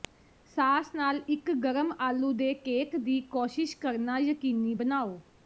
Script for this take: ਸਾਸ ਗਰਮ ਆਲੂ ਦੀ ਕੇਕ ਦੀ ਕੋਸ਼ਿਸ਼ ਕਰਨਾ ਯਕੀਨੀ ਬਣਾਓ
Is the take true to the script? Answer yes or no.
no